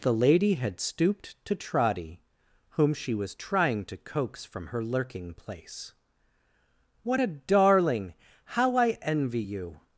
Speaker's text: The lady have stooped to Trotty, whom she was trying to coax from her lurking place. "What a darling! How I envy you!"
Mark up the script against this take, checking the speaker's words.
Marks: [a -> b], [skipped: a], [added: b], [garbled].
The lady [have -> had] stooped to Trotty, whom she was trying to coax from her lurking place. "What a darling! How I envy you!"